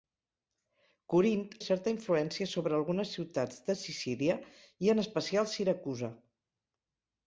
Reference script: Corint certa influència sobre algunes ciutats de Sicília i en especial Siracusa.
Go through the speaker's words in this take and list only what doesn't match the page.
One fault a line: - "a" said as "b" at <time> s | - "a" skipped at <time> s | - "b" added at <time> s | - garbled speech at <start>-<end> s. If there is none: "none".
none